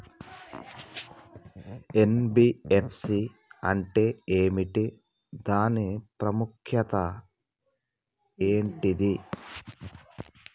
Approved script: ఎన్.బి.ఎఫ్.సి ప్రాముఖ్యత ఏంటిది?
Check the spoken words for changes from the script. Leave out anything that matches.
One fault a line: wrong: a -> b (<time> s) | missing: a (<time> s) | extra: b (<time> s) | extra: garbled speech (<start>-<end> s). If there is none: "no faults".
extra: అంటే ఏమిటి దాని (3.6 s)